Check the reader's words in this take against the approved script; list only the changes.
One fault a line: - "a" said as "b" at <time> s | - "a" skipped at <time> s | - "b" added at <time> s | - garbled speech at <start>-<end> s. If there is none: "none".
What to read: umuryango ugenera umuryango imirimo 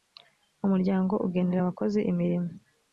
- "umuryango" said as "abakozi" at 1.6 s